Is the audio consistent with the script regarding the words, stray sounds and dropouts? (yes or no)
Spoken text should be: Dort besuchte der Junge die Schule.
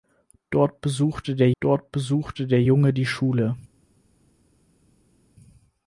no